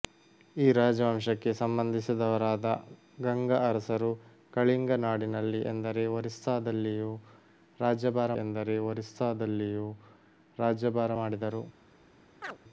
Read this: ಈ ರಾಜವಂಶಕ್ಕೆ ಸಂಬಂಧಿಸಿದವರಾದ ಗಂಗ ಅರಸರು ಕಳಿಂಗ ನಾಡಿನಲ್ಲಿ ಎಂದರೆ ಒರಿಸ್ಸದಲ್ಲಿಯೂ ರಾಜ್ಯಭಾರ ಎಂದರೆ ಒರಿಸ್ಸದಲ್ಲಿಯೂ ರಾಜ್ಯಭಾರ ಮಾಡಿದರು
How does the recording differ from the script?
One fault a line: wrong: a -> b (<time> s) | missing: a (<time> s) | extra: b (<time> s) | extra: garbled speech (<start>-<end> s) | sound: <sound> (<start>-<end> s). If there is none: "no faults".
sound: chirp (12.4-12.6 s)